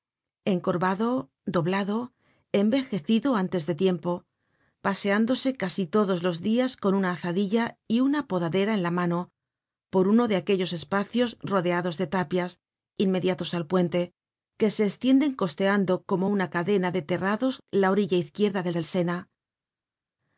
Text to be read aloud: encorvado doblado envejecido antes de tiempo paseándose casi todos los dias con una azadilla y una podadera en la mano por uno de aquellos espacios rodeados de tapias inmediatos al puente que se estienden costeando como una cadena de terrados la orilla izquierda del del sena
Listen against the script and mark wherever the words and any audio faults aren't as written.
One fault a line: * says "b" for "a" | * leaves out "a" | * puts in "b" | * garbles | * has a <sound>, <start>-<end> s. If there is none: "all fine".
all fine